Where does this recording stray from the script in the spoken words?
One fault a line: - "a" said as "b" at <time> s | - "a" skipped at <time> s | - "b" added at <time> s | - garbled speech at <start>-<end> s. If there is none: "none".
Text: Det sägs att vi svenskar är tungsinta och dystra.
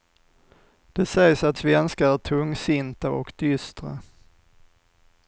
- "vi" skipped at 1.6 s